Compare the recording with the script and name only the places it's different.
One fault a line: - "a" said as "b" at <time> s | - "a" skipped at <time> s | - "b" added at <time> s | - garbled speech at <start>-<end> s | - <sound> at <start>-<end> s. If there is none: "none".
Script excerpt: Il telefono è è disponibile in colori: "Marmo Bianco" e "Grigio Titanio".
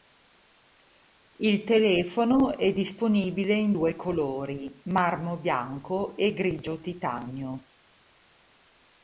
- "è" skipped at 2.7 s
- "due" added at 3.7 s